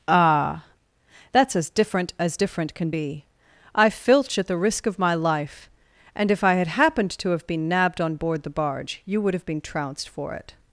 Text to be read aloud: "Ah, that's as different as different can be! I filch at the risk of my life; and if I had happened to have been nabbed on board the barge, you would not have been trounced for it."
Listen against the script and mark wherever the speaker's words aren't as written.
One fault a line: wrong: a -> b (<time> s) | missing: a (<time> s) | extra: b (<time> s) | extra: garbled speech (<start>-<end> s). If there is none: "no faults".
missing: not (9.3 s)